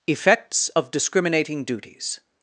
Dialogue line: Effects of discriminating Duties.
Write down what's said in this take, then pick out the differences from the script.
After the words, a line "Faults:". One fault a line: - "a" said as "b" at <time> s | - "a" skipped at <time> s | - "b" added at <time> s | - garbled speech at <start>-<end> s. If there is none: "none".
Effects of discriminating Duties.
Faults:
none